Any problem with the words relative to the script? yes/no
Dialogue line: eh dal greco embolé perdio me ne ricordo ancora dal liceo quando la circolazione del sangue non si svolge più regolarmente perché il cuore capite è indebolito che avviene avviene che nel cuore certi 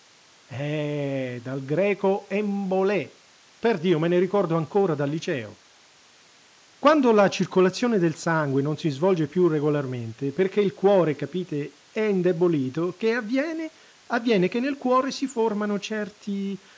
yes